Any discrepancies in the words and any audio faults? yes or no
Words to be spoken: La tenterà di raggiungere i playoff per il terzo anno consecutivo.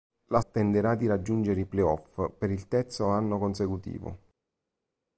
no